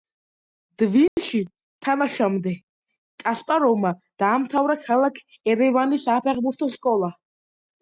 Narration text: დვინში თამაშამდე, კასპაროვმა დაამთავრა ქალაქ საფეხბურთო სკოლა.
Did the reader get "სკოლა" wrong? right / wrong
right